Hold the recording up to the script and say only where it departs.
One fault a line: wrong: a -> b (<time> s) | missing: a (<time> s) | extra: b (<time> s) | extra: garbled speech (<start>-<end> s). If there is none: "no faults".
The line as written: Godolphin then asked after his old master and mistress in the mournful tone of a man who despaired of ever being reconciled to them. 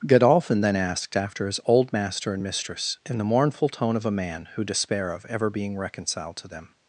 wrong: despaired -> despair (4.6 s)